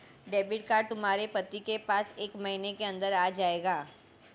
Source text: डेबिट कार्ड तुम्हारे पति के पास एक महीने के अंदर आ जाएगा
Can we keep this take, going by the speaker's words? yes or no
yes